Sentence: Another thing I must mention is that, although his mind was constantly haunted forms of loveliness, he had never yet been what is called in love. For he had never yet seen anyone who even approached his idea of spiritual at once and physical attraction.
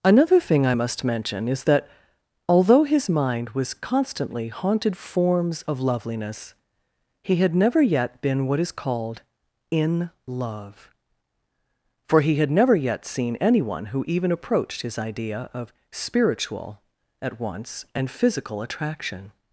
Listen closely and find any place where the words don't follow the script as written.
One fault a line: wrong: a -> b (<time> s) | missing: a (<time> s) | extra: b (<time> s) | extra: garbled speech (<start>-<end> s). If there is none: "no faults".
no faults